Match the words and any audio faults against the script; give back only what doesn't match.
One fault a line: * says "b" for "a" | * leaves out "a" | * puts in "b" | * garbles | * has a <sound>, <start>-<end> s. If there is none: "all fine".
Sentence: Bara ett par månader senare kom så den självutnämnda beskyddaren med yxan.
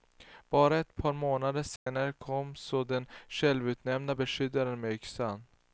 * has a dropout, 1.8-1.9 s